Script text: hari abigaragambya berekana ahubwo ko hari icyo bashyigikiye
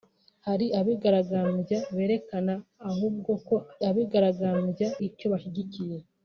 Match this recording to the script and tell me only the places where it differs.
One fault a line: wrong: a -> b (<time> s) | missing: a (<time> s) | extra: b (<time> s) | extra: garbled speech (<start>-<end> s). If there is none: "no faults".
wrong: hari -> abigaragambya (3.9 s)